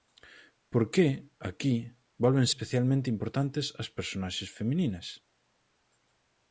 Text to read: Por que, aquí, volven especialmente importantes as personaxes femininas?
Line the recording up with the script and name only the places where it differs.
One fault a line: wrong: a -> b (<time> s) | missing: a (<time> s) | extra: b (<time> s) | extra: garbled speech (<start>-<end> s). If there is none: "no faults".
no faults